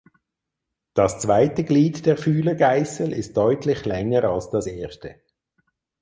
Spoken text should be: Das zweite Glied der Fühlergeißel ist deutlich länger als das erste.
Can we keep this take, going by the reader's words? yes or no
yes